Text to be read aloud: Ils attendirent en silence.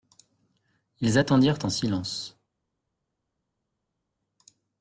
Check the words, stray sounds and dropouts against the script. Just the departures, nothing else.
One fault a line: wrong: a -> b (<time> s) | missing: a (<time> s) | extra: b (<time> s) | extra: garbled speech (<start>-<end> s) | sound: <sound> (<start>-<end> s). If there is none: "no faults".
no faults